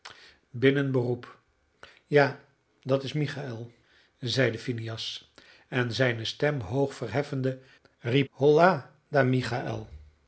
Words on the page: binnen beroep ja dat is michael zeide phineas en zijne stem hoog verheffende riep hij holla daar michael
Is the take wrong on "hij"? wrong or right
wrong